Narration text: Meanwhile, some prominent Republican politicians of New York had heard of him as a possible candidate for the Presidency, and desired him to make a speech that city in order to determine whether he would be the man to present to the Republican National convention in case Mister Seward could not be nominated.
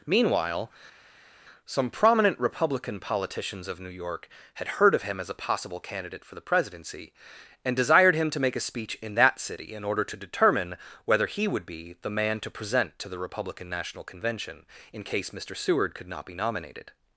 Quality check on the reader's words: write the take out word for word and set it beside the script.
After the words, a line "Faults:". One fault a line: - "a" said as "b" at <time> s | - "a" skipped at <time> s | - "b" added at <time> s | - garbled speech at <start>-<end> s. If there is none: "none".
Meanwhile, some prominent Republican politicians of New York had heard of him as a possible candidate for the Presidency, and desired him to make a speech in that city in order to determine whether he would be the man to present to the Republican National convention in case Mister Seward could not be nominated.
Faults:
- "in" added at 9.0 s